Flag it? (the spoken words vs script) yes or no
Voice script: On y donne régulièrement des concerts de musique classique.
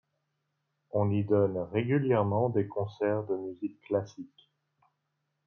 no